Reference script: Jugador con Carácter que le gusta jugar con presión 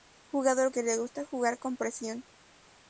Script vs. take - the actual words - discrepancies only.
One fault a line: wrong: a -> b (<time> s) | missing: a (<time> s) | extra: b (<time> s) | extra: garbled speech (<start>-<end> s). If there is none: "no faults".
missing: con Carácter (0.7 s)